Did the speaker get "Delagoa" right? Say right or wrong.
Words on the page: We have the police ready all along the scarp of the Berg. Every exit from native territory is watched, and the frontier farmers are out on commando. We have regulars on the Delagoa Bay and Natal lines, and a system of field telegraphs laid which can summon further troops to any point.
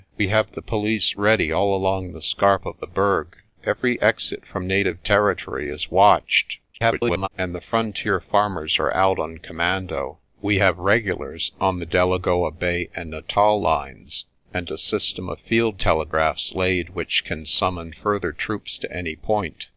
right